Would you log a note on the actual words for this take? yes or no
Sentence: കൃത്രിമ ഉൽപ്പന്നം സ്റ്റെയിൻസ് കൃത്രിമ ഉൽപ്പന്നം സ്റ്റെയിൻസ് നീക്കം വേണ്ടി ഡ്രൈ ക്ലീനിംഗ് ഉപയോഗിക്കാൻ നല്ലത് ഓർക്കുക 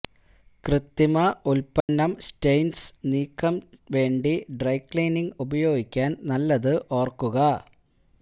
yes